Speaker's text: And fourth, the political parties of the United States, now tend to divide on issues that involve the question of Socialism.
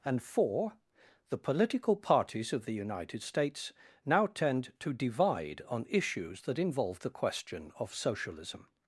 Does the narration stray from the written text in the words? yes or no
yes